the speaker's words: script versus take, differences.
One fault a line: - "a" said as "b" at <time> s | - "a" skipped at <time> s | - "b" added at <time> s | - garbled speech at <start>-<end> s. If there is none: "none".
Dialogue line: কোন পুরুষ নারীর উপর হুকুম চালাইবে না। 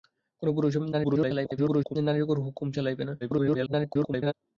- garbled speech at 0.9-2.0 s
- garbled speech at 3.2-4.3 s